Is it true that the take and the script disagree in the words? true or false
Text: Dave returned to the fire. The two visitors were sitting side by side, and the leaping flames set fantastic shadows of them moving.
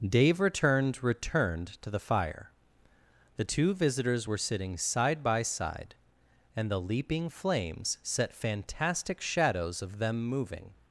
true